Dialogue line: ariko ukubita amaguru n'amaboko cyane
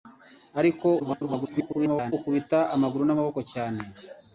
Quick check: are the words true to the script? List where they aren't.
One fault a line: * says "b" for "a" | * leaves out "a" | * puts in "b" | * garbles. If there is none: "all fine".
* garbles